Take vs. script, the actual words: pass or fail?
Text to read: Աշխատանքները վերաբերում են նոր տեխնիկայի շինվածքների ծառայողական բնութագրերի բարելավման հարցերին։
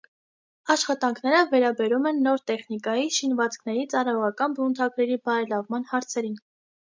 pass